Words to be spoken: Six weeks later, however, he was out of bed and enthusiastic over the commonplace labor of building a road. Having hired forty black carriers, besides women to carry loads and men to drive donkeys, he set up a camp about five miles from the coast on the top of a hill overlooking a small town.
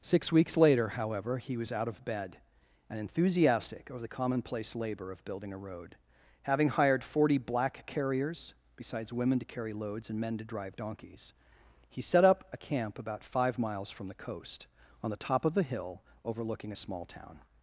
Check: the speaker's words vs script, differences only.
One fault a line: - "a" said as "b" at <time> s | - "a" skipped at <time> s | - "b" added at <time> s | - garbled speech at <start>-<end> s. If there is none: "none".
none